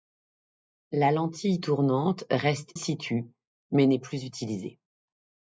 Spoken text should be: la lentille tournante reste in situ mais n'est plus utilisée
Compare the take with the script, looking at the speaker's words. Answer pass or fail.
fail